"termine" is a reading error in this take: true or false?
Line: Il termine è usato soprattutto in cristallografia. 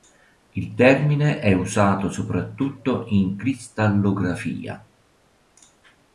false